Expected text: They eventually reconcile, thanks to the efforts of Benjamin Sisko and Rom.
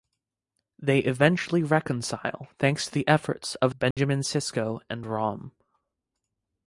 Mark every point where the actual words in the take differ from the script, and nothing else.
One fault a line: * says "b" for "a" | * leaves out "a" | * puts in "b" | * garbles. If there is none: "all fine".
all fine